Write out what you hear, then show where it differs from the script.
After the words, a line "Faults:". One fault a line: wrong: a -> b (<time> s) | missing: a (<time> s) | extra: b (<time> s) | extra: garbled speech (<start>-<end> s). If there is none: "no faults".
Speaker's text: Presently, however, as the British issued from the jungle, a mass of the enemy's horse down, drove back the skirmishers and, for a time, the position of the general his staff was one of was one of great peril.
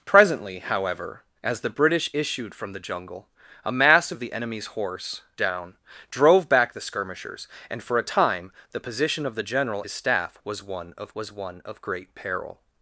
Presently, however, as the British issued from the jungle, a mass of the enemy's horse down, drove back the skirmishers and, for a time, the position of the general his staff was one of was one of great peril.
Faults:
no faults